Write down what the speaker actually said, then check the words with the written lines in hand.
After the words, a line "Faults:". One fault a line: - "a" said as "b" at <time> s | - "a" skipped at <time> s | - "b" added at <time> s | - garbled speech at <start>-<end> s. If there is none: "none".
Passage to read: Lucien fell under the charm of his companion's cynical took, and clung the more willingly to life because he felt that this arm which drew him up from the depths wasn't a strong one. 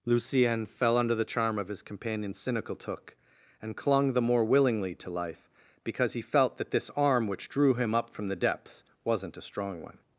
Lucien fell under the charm of his companion's cynical took, and clung the more willingly to life because he felt that this arm which drew him up from the depths wasn't a strong one.
Faults:
none